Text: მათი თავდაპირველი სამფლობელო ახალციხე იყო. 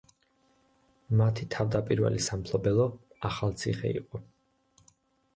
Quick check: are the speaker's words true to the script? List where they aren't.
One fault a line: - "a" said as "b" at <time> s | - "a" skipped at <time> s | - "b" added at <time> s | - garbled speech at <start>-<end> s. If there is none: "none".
none